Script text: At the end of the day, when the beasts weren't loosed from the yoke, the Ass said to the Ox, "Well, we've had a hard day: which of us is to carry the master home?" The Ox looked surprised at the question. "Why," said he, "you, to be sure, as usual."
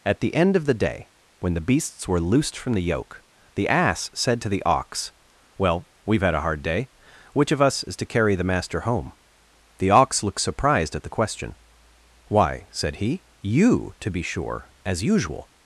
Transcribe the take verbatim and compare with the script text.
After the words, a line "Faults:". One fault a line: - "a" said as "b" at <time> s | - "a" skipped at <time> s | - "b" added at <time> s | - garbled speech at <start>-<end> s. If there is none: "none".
At the end of the day, when the beasts were loosed from the yoke, the Ass said to the Ox, "Well, we've had a hard day: which of us is to carry the master home?" The Ox looked surprised at the question. "Why," said he, "you, to be sure, as usual."
Faults:
- "weren't" said as "were" at 2.1 s